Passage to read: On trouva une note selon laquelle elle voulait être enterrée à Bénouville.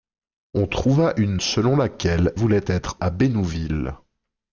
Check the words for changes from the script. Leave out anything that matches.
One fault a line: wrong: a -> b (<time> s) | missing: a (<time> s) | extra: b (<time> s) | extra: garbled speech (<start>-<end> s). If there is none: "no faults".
missing: note (1.4 s)
missing: elle (2.3 s)
missing: enterrée (3.0 s)